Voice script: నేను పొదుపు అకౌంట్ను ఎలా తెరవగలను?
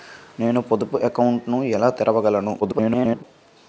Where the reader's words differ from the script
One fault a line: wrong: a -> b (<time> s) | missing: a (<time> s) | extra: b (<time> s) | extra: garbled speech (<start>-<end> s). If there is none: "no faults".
extra: garbled speech (2.6-3.2 s)